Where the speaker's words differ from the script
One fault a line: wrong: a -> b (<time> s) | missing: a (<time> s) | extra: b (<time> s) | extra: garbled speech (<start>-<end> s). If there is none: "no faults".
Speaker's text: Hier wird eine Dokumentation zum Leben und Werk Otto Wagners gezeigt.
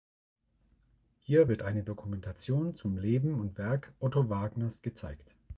no faults